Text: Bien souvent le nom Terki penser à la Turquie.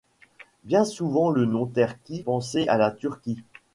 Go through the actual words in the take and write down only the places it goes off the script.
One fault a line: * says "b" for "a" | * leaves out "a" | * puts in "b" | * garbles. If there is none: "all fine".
all fine